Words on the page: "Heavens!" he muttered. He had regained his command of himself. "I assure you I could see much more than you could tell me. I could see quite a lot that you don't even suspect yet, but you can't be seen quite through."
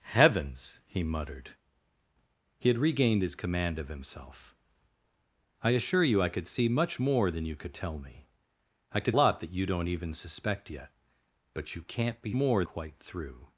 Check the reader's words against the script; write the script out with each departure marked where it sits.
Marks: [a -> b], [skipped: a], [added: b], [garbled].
"Heavens!" he muttered. He had regained his command of himself. "I assure you I could see much more than you could tell me. I could [skipped: see quite a] lot that you don't even suspect yet, but you can't be [seen -> more] quite through."